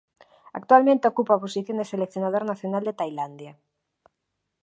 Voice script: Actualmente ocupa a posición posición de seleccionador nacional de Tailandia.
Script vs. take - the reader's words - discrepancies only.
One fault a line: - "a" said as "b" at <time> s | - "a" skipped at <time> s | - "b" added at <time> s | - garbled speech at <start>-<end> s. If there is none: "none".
- "posición" skipped at 1.8 s